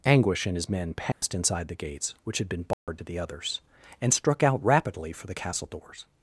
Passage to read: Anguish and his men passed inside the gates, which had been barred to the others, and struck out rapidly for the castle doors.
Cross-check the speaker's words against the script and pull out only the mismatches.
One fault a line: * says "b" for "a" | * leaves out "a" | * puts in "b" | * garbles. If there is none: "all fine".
all fine